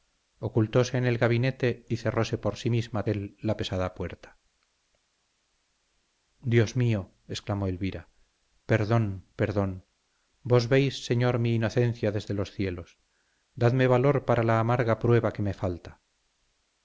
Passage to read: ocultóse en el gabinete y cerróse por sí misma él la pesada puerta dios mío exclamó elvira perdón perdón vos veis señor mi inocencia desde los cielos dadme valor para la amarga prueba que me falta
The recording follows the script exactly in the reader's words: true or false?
true